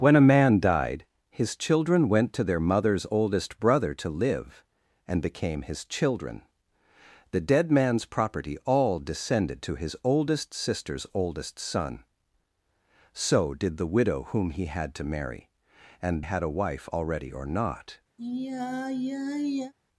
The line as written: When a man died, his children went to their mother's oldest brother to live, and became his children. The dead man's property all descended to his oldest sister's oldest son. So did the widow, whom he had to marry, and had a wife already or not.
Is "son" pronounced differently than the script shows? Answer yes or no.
no